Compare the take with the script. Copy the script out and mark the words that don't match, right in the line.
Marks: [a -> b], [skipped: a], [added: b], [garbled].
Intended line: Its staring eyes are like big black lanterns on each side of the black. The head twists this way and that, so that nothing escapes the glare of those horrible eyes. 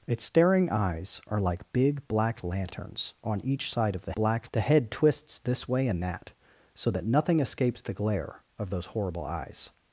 Its staring eyes are like big black lanterns on each side of the black. The head twists this way and that, so that nothing escapes the glare of those horrible eyes.